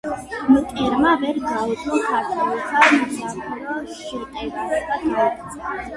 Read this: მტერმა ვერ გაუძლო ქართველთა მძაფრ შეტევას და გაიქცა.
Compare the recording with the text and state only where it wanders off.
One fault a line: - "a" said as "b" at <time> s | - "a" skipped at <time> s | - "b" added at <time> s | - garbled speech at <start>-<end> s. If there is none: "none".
none